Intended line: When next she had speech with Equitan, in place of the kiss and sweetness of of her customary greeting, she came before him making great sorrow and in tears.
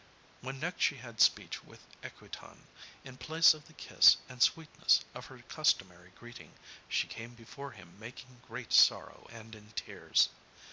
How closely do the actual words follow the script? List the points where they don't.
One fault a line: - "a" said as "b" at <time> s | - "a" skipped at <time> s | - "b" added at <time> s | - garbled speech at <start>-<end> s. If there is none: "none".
- "of" skipped at 5.2 s